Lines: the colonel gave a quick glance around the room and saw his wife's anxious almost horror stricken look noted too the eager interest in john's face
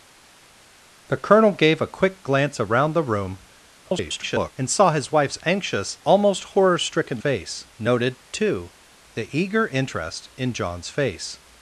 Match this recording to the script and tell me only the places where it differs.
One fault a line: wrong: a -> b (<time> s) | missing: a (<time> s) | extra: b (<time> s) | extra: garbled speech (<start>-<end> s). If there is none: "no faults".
extra: garbled speech (3.8-4.5 s)
wrong: look -> face (7.2 s)